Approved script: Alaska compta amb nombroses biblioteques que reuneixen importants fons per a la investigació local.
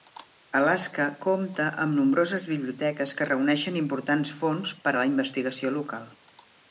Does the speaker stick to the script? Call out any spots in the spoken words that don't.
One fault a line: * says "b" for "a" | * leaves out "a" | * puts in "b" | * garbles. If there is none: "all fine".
all fine